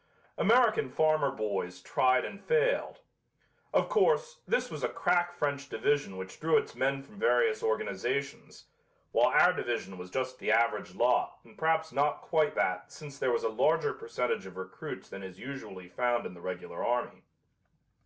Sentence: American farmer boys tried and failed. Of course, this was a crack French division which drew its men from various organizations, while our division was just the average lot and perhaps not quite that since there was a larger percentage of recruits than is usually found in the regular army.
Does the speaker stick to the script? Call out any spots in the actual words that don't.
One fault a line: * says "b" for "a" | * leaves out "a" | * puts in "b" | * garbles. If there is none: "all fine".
all fine